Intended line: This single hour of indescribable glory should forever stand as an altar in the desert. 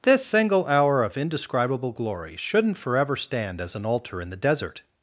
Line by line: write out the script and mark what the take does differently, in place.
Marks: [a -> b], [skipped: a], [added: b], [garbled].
This single hour of indescribable glory [should -> shouldn't] forever stand as an altar in the desert.